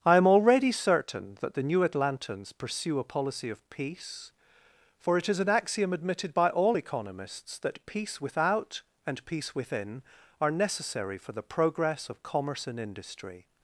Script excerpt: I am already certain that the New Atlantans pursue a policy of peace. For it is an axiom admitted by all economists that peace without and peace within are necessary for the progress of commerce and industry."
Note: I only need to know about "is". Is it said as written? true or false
true